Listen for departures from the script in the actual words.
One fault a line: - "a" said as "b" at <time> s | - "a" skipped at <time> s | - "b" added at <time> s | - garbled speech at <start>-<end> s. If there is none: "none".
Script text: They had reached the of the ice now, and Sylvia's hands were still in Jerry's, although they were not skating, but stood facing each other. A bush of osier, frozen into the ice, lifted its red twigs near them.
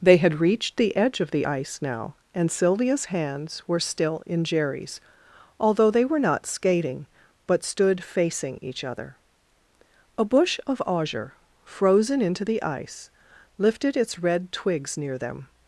- "edge" added at 0.9 s